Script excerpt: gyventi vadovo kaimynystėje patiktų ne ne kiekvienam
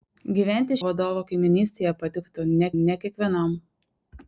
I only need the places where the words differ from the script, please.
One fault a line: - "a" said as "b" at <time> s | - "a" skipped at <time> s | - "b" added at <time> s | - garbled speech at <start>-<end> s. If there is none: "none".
none